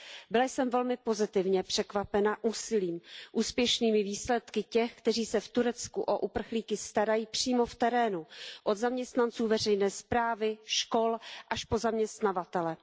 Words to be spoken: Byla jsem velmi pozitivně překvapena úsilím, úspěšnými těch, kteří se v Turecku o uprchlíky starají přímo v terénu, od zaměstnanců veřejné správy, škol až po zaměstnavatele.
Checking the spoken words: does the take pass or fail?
fail